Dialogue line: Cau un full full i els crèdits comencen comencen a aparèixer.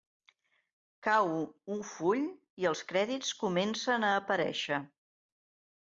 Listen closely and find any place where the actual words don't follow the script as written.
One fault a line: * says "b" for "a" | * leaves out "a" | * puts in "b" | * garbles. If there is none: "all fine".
* leaves out "full"
* leaves out "comencen"